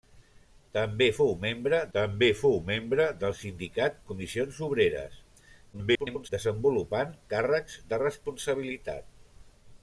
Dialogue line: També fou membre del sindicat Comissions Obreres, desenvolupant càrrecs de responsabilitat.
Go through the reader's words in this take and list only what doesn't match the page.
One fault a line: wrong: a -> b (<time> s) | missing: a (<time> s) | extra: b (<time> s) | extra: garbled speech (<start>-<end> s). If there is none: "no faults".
extra: també fou membre (2.0 s)
extra: garbled speech (5.7-6.3 s)